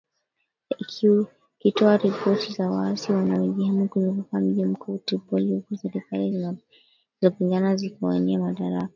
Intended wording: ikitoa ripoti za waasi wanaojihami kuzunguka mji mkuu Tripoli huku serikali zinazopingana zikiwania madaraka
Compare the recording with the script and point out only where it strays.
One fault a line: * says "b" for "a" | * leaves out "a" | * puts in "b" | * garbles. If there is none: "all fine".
all fine